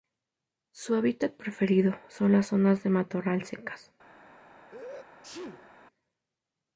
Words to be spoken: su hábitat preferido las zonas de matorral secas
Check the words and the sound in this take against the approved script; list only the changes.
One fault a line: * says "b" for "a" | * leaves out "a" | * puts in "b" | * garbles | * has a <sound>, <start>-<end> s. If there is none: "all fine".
* puts in "son"
* has a sneeze, 4.7-5.7 s